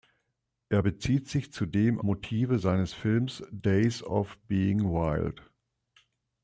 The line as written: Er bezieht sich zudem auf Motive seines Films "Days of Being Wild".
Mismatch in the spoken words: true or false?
true